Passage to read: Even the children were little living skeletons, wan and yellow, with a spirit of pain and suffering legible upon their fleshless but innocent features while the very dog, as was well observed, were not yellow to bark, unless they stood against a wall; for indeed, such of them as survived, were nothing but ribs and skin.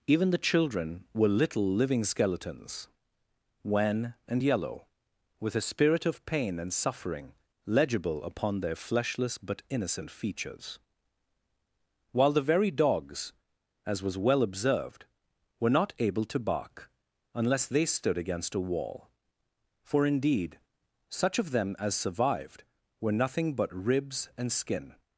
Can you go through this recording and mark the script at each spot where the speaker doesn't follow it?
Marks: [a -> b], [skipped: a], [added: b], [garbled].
Even the children were little living skeletons, wan and yellow, with a spirit of pain and suffering legible upon their fleshless but innocent features while the very [dog, -> dogs] as was well observed, were not [yellow -> able] to bark, unless they stood against a wall; for indeed, such of them as survived, were nothing but ribs and skin.